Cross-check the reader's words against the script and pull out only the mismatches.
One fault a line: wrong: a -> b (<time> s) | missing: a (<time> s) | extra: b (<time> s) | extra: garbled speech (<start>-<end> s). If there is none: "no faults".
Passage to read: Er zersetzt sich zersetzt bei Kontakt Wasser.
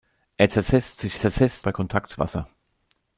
no faults